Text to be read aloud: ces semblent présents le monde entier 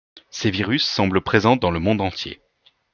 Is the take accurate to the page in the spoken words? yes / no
no